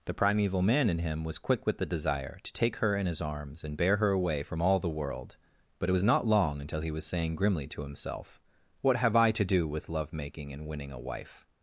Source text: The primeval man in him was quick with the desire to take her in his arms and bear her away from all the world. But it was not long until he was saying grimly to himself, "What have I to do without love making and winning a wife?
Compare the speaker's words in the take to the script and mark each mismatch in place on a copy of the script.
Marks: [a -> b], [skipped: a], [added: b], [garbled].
The primeval man in him was quick with the desire to take her in his arms and bear her away from all the world. But it was not long until he was saying grimly to himself, "What have I to do [without -> with] love making and winning a wife?